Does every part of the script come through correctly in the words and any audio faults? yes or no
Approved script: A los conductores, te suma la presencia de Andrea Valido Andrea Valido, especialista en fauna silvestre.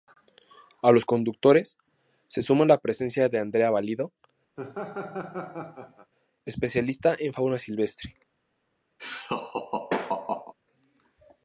no